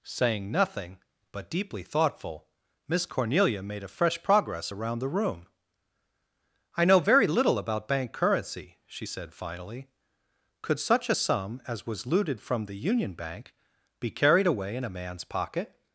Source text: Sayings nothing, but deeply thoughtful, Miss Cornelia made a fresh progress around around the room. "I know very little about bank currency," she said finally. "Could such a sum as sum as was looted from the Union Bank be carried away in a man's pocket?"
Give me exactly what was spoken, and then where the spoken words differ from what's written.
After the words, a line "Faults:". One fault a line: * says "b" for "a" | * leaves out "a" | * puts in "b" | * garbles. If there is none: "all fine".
Saying nothing, but deeply thoughtful, Miss Cornelia made a fresh progress around the room. "I know very little about bank currency," she said finally. "Could such a sum as was looted from the Union Bank be carried away in a man's pocket?"
Faults:
* says "Saying" for "Sayings"
* leaves out "around"
* leaves out "sum as"